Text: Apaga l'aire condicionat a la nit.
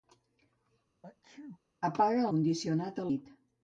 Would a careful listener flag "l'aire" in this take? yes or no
yes